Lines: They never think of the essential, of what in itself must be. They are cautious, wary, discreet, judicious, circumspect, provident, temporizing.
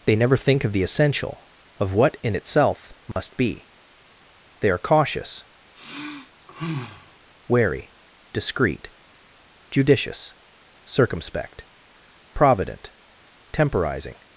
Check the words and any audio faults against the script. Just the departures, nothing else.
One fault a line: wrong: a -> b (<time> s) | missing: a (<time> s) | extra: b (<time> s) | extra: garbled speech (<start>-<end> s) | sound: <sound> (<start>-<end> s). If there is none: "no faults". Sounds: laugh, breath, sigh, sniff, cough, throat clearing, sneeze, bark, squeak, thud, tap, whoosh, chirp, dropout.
sound: dropout (3.1-3.2 s)
sound: sigh (5.7-7.2 s)